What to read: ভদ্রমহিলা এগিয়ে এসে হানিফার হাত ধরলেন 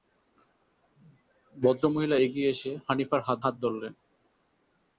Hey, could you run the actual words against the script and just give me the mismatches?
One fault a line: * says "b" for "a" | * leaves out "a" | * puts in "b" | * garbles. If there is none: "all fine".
* puts in "হাত"